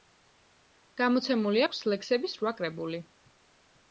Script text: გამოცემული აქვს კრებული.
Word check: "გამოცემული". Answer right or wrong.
right